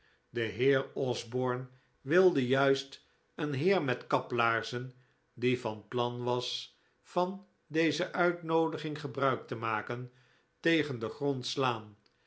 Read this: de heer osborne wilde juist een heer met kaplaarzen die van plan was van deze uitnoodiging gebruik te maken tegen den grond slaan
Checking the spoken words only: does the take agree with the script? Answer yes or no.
yes